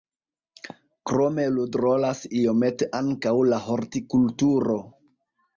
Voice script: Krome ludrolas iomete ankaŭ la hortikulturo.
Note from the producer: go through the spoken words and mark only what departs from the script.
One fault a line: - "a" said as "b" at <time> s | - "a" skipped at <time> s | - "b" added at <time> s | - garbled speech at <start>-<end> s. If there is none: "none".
none